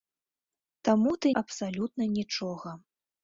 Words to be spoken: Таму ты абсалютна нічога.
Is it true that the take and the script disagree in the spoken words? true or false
false